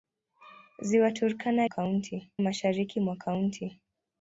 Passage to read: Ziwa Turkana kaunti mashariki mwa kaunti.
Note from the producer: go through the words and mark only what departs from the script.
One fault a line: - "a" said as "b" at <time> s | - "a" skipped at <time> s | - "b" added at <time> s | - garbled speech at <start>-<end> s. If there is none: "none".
none